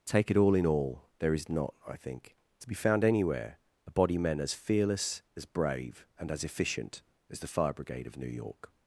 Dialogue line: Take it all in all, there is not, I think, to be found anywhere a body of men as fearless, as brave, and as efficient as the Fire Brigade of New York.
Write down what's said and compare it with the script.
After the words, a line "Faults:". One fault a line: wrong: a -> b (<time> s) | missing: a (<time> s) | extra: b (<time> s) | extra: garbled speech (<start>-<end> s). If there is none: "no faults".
Take it all in all, there is not, I think, to be found anywhere a body men as fearless, as brave, and as efficient as the Fire Brigade of New York.
Faults:
missing: of (4.2 s)